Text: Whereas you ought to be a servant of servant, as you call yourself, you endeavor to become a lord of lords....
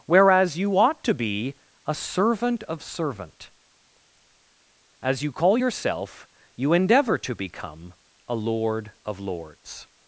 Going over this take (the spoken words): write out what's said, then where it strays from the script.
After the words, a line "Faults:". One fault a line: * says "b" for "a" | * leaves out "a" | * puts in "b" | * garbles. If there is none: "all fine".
Whereas you ought to be a servant of servant, as you call yourself, you endeavor to become a lord of lords....
Faults:
all fine